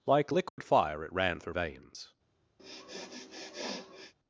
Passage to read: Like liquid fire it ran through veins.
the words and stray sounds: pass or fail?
fail